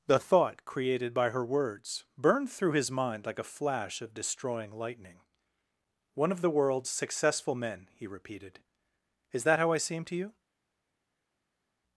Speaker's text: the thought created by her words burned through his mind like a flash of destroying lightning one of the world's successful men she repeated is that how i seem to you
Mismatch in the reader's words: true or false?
true